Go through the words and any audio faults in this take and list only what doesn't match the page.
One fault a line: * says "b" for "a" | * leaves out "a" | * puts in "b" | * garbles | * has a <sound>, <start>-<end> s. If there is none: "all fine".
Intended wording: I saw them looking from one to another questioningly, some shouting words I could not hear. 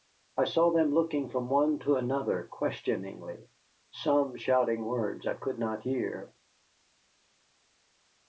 all fine